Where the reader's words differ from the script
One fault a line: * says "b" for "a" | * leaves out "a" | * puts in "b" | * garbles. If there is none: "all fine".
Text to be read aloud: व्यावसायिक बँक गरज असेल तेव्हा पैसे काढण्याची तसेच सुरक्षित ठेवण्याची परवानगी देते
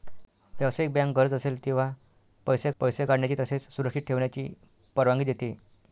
* puts in "पैसे"